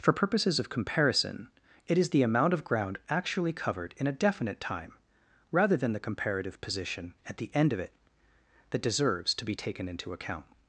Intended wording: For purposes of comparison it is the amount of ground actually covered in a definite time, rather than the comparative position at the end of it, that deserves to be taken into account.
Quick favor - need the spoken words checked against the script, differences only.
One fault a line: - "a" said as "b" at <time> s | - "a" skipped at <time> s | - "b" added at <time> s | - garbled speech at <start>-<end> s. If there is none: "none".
none